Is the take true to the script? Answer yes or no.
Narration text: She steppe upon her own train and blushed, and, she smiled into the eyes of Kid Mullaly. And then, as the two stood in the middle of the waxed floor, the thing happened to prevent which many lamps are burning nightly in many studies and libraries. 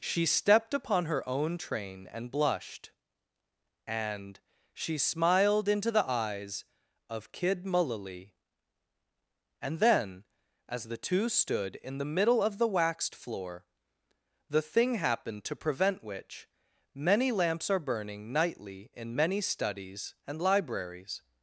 no